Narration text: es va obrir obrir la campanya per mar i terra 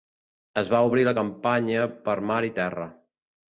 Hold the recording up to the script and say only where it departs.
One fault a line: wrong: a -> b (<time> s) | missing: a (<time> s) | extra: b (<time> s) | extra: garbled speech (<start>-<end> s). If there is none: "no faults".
missing: obrir (1.0 s)